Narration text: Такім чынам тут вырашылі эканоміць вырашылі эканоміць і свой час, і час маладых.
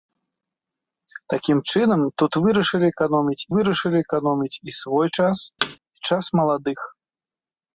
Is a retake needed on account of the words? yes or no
no